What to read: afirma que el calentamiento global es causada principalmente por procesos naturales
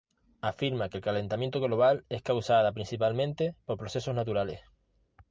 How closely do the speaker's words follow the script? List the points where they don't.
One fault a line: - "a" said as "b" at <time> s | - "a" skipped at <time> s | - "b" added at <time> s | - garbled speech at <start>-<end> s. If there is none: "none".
none